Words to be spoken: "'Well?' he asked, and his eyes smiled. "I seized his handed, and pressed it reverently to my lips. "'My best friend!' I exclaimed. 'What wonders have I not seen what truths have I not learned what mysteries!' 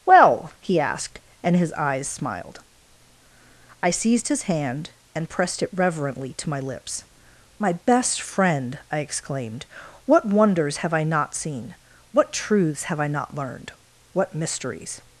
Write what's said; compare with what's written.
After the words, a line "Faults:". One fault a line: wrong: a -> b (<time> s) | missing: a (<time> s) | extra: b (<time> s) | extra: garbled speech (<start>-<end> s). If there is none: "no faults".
"'Well?' he asked, and his eyes smiled. "I seized his hand, and pressed it reverently to my lips. "'My best friend!' I exclaimed. 'What wonders have I not seen what truths have I not learned what mysteries!'
Faults:
wrong: handed -> hand (4.4 s)